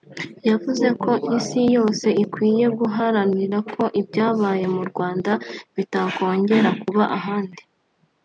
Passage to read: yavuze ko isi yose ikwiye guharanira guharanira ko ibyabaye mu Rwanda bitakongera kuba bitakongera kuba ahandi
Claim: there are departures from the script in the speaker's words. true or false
true